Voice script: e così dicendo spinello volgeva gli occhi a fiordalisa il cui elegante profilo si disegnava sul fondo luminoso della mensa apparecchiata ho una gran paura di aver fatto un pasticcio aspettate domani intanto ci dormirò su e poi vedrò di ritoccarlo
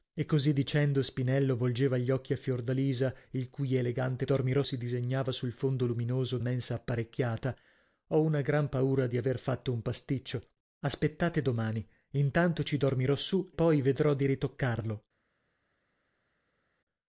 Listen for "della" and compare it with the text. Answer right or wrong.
wrong